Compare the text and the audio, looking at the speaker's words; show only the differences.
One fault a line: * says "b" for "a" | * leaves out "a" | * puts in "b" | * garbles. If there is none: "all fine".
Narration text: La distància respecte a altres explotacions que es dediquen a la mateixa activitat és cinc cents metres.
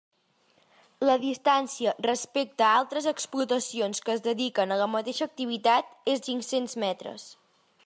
all fine